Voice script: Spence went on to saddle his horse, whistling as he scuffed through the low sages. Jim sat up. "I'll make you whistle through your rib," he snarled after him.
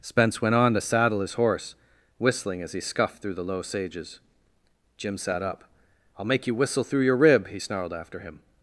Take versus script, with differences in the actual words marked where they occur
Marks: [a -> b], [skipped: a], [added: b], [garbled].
Spence went on to saddle his horse, whistling as he scuffed through the low sages. Jim sat up. "I'll make you whistle through your rib," he snarled after him.